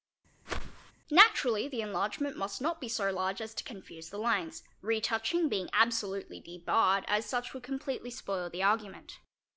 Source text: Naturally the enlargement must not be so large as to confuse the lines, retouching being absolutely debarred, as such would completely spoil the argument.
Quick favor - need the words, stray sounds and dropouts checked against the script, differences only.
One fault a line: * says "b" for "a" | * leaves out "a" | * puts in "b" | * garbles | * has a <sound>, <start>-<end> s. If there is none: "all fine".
* has a whoosh, 0.5-0.9 s